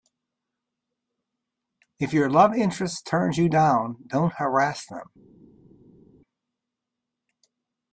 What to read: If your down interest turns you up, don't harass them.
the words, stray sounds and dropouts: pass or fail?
fail